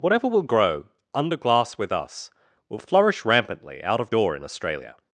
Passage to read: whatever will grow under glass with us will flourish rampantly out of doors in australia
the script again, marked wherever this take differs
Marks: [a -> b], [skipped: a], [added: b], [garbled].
whatever will grow under glass with us will flourish rampantly out of [doors -> door] in australia